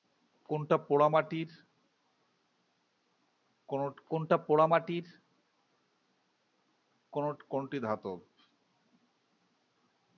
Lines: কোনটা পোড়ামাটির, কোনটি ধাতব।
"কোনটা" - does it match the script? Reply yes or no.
yes